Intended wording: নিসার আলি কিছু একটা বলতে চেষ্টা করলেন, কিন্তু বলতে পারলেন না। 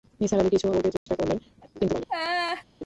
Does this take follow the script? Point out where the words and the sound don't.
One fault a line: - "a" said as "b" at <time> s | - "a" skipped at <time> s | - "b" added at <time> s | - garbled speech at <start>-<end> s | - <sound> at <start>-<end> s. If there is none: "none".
- "একটা" skipped at 0.7 s
- dropout at 1.0-1.1 s
- "বলতে" skipped at 1.9 s
- laugh at 2.1-2.6 s